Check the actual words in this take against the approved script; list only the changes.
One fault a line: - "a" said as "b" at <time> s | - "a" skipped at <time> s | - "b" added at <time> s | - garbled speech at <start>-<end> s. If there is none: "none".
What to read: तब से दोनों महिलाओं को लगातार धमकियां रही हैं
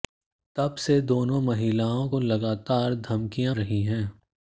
none